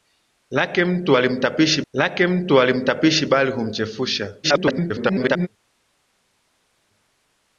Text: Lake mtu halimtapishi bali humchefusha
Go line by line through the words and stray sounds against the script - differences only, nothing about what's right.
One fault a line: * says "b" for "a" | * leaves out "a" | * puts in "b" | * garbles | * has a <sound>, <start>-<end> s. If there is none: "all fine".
* puts in "lake mtu halimtapishi"
* garbles